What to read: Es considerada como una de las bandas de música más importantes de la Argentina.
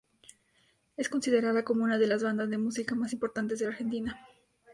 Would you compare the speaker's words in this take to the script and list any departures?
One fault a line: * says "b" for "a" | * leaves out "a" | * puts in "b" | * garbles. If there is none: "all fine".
all fine